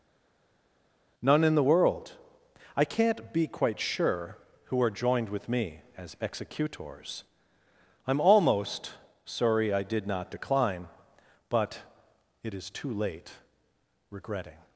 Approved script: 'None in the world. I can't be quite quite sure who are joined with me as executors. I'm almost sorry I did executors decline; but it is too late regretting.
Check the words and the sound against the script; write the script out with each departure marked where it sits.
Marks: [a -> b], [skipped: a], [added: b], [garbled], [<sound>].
'None in the world. I can't be quite [skipped: quite] sure who are joined with me as executors. I'm almost sorry I did [executors -> not] decline; but it is too late regretting.